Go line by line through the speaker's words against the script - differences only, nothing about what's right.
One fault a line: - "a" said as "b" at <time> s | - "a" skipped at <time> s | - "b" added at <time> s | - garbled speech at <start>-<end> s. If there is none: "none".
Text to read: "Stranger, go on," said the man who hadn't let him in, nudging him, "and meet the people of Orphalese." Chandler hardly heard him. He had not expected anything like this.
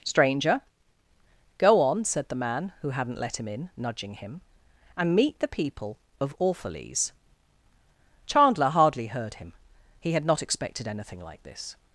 none